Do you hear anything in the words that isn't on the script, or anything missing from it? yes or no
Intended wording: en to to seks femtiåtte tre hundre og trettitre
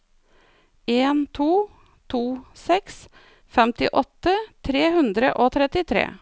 no